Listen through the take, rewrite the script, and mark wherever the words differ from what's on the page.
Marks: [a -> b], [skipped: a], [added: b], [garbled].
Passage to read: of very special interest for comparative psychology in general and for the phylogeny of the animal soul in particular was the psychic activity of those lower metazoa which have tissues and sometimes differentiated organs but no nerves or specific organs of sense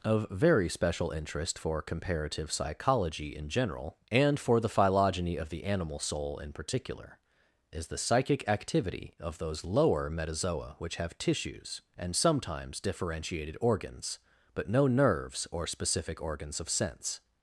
of very special interest for comparative psychology in general and for the phylogeny of the animal soul in particular [was -> is] the psychic activity of those lower metazoa which have tissues and sometimes differentiated organs but no nerves or specific organs of sense